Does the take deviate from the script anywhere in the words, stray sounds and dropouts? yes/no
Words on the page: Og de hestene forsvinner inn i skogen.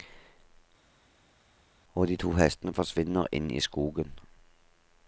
yes